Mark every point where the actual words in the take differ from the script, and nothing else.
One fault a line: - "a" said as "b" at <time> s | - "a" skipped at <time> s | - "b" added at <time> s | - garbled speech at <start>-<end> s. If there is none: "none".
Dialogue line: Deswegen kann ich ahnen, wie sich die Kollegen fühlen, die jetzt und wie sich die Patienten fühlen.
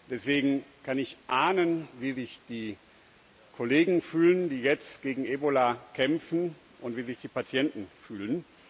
- "gegen Ebola kämpfen" added at 5.0 s